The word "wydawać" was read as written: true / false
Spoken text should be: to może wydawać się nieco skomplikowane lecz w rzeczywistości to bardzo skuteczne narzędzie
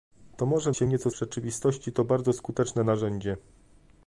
false